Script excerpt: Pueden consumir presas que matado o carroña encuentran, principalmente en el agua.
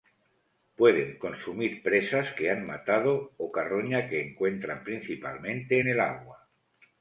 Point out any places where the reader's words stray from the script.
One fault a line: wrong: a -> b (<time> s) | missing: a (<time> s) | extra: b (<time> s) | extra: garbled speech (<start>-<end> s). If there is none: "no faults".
extra: han (2.5 s)
extra: que (4.1 s)